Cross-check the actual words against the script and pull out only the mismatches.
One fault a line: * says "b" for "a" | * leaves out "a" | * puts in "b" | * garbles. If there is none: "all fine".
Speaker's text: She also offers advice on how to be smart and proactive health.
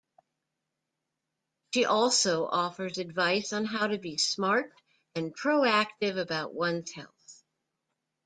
* puts in "about one's"